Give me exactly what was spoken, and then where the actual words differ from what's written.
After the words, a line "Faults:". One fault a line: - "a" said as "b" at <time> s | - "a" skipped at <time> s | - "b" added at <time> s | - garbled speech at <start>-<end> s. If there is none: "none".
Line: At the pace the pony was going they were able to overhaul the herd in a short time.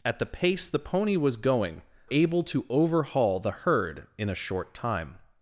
At the pace the pony was going able to overhaul the herd in a short time.
Faults:
- "they were" skipped at 1.8 s